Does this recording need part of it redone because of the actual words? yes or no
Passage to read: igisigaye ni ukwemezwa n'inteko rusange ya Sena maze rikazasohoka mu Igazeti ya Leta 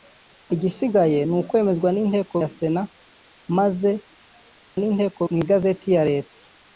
yes